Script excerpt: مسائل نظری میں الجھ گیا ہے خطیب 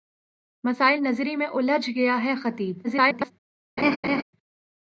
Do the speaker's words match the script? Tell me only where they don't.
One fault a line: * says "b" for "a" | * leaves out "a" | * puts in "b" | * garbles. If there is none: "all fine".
* garbles